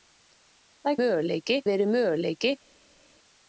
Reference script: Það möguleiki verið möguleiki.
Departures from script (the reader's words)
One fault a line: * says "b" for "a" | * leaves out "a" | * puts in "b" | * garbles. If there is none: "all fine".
all fine